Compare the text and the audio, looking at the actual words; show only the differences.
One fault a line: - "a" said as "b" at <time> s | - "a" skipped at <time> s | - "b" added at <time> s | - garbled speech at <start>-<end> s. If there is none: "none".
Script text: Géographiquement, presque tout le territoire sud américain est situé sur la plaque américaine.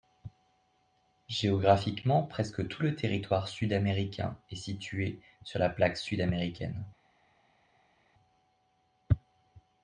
- "sud" added at 6.0 s